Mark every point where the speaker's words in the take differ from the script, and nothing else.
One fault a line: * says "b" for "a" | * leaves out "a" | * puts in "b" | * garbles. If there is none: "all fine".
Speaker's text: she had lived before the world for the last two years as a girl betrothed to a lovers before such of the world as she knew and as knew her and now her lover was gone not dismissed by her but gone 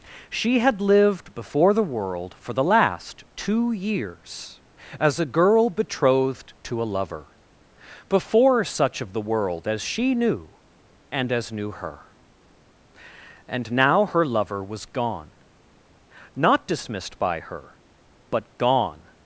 * says "lover" for "lovers"